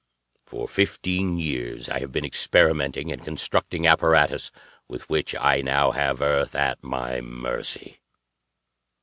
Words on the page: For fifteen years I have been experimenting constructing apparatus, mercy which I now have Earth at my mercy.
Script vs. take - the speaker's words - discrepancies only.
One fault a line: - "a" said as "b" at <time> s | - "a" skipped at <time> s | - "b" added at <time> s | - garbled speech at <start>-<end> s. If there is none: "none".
- "and" added at 3.1 s
- "mercy" said as "with" at 4.9 s